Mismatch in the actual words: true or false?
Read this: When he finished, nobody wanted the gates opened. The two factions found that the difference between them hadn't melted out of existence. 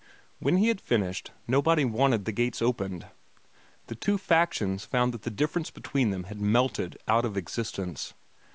true